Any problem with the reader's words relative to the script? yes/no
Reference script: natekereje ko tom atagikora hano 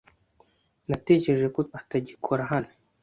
yes